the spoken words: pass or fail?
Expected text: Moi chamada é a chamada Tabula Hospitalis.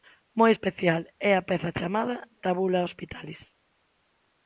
fail